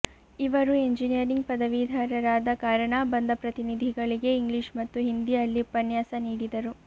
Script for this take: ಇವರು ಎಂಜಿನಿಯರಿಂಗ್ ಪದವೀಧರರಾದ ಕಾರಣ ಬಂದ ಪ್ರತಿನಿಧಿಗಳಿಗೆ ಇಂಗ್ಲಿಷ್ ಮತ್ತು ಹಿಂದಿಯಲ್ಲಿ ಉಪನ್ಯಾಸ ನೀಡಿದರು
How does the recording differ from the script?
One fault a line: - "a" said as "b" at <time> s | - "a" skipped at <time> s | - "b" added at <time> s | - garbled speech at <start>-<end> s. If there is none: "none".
none